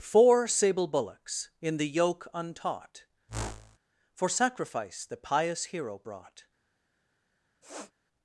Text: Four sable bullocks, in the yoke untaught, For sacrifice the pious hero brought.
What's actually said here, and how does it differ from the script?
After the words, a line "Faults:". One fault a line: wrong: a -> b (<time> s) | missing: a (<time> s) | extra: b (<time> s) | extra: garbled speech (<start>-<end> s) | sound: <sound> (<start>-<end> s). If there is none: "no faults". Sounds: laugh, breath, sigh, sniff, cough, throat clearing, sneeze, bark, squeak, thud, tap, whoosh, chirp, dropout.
Four sable bullocks, in the yoke untaught, For sacrifice the pious hero brought.
Faults:
sound: whoosh (3.3-3.8 s)
sound: sniff (7.6-7.9 s)